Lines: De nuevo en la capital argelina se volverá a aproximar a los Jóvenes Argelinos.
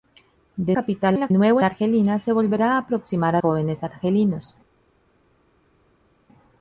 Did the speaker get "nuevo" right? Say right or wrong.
wrong